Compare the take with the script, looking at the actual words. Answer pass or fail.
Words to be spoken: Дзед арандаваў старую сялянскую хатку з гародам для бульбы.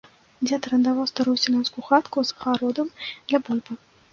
pass